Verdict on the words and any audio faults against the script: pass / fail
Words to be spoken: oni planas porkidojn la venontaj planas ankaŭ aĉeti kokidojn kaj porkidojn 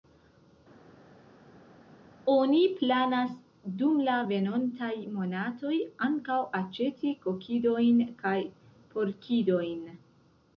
fail